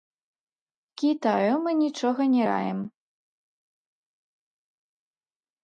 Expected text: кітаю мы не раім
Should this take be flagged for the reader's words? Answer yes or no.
yes